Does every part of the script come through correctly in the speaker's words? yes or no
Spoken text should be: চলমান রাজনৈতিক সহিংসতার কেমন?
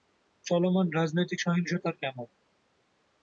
yes